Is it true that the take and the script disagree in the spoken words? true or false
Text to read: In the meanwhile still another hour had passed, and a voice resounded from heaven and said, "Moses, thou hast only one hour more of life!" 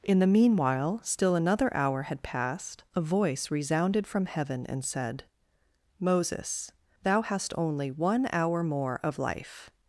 true